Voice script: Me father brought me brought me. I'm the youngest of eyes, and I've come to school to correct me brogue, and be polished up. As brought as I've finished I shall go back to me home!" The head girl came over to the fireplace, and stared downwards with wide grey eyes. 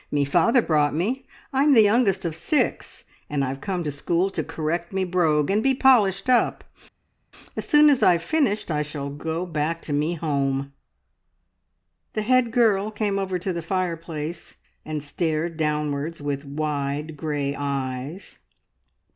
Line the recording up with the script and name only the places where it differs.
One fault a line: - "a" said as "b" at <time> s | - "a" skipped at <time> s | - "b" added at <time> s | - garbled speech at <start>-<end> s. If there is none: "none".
- "brought me" skipped at 1.3 s
- "eyes" said as "six" at 2.3 s
- "brought" said as "soon" at 7.7 s